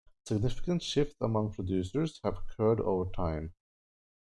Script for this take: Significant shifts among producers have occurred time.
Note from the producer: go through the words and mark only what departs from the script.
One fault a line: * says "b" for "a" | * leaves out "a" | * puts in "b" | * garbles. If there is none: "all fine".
* puts in "over"